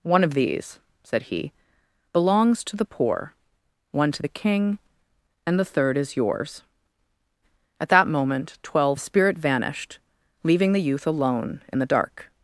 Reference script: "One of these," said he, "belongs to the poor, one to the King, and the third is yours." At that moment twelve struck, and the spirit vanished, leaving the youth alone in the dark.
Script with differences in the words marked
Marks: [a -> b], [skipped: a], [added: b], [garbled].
"One of these," said he, "belongs to the poor, one to the King, and the third is yours." At that moment twelve [skipped: struck, and] the spirit vanished, leaving the youth alone in the dark.